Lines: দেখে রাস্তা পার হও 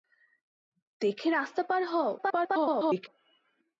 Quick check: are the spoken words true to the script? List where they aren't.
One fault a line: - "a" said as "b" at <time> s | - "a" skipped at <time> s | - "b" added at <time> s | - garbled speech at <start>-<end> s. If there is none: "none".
- garbled speech at 2.2-3.1 s